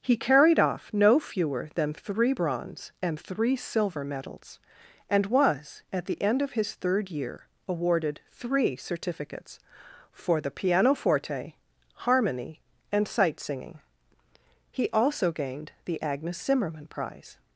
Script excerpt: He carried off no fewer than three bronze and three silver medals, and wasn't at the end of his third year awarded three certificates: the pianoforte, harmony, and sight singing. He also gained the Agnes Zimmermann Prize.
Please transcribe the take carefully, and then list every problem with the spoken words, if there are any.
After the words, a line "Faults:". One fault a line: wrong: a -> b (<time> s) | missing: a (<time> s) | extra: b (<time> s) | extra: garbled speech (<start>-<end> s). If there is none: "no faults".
He carried off no fewer than three bronze and three silver medals, and was at the end of his third year awarded three certificates: for the pianoforte, harmony, and sight singing. He also gained the Agnes Zimmermann Prize.
Faults:
wrong: wasn't -> was (5.2 s)
extra: for (10.1 s)